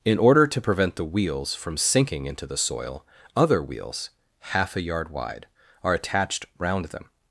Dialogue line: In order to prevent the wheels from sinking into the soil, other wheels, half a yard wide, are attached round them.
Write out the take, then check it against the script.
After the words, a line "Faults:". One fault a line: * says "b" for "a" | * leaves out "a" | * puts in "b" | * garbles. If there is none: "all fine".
In order to prevent the wheels from sinking into the soil, other wheels, half a yard wide, are attached round them.
Faults:
all fine